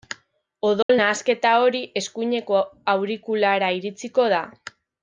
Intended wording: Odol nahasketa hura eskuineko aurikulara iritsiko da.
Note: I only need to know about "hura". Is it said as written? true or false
false